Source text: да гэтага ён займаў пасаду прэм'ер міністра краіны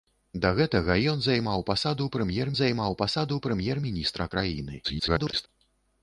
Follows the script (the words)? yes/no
no